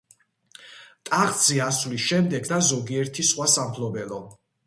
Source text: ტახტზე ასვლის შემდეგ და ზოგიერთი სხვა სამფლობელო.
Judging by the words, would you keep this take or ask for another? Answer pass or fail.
pass